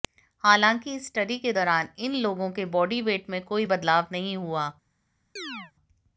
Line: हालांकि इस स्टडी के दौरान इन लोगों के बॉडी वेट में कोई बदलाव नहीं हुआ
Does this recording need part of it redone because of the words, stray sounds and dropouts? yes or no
yes